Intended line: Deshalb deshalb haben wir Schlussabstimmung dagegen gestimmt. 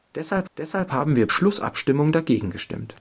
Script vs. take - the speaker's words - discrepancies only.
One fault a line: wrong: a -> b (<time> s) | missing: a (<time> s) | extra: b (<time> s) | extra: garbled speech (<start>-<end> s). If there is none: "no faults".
no faults